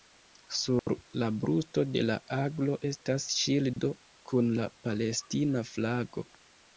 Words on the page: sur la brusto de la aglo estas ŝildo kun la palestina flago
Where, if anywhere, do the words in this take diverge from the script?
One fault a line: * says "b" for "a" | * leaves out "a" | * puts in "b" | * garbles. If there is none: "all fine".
all fine